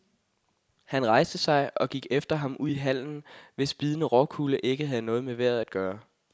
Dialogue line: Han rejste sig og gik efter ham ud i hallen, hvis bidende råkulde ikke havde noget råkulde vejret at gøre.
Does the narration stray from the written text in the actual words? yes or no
yes